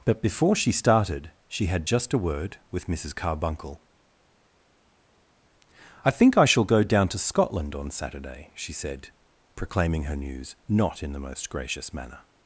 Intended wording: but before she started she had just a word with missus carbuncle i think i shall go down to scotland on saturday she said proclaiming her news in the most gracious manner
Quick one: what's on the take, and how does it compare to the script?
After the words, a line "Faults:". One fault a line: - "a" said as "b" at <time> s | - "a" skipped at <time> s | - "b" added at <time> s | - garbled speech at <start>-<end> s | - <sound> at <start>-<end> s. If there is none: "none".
but before she started she had just a word with missus carbuncle i think i shall go down to scotland on saturday she said proclaiming her news not in the most gracious manner
Faults:
- "not" added at 10.7 s